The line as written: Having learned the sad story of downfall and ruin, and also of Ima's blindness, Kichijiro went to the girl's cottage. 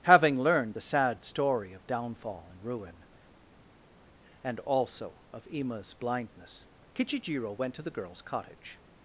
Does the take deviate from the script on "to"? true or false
false